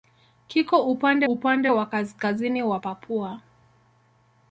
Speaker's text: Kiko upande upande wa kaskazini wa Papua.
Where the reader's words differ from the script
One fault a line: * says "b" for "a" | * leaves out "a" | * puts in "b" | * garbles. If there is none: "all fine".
all fine